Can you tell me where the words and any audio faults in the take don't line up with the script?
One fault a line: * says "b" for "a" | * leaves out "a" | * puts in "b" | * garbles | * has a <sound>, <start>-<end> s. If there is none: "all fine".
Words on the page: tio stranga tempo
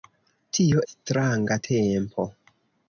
all fine